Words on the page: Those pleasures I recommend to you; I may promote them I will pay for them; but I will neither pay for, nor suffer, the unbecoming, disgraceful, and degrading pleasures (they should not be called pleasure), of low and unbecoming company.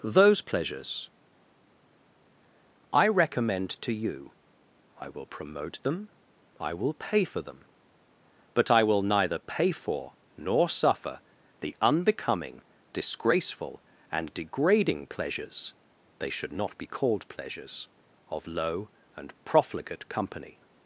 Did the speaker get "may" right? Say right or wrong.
wrong